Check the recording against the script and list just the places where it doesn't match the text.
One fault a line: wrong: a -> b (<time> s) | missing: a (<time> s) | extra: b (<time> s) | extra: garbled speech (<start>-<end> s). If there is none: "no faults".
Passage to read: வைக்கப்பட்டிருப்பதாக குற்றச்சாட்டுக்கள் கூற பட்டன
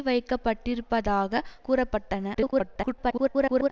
missing: குற்றச்சாட்டுக்கள் (1.4 s)
extra: garbled speech (2.3-3.7 s)